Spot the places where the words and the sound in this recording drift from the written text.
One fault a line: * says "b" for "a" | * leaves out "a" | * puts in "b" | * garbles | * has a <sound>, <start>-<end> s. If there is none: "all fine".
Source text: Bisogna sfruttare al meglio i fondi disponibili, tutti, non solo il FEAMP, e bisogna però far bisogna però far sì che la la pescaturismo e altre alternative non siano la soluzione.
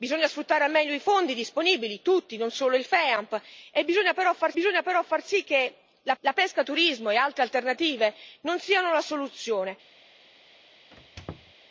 * has a squeak, 10.9-11.5 s